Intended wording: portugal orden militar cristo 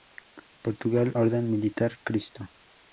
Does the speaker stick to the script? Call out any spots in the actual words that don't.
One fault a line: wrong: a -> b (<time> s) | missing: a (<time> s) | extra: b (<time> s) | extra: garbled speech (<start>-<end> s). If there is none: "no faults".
no faults